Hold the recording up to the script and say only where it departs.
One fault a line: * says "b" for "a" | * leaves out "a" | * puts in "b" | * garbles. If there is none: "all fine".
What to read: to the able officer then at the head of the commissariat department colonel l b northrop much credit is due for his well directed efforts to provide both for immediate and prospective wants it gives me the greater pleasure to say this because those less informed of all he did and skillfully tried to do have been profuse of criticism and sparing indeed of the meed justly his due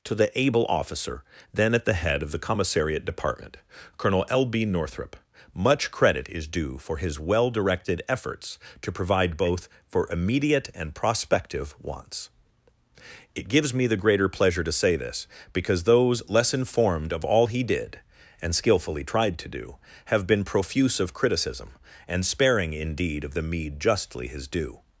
all fine